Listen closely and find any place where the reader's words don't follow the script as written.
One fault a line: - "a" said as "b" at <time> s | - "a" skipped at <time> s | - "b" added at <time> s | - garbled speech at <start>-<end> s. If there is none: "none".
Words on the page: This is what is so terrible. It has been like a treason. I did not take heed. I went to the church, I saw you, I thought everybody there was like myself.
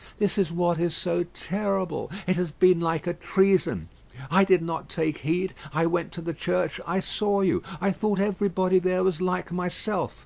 none